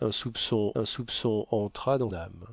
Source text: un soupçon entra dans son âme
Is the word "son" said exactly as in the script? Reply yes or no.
no